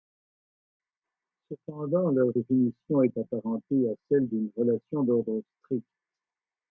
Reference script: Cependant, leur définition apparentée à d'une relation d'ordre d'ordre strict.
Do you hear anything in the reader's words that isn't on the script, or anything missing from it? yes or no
yes